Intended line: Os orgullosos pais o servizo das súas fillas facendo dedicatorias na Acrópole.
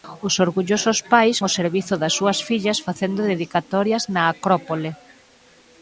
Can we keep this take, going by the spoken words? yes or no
yes